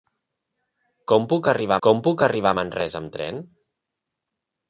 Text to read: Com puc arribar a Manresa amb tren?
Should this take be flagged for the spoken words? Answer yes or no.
yes